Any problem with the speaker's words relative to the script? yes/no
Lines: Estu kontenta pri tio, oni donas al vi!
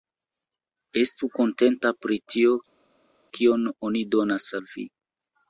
yes